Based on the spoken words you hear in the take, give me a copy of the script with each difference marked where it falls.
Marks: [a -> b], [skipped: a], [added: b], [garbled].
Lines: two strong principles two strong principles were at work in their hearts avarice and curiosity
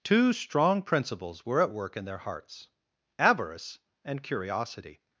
two strong principles [skipped: two strong principles] were at work in their hearts avarice and curiosity